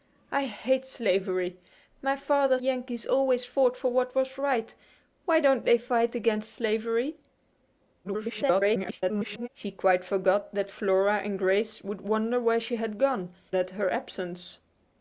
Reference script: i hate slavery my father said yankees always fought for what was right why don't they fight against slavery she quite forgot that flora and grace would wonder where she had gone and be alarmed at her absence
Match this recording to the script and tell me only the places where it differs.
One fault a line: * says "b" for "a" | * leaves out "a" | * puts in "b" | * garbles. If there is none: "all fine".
* leaves out "said"
* garbles
* leaves out "and be alarmed"